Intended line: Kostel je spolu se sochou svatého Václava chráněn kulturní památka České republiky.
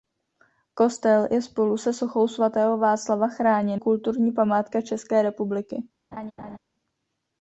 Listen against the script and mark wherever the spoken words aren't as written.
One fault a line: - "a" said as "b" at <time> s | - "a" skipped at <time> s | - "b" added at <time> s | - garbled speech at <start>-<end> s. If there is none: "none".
none